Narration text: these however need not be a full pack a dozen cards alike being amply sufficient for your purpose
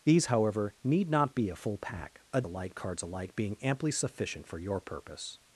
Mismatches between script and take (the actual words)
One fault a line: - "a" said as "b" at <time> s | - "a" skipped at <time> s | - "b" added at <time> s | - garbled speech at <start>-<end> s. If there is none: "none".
- "dozen" said as "alike" at 2.4 s